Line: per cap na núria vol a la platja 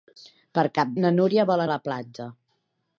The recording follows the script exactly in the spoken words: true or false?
true